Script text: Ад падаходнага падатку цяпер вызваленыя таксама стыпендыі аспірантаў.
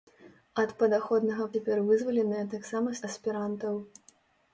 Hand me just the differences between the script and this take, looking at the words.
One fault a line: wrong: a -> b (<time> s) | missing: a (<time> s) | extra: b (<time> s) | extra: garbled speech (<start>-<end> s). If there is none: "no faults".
missing: падатку (1.4 s)
missing: стыпендыі (3.0 s)